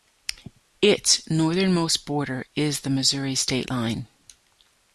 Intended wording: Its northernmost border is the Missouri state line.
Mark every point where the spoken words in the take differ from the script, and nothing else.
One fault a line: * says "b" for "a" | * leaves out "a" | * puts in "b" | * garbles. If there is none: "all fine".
all fine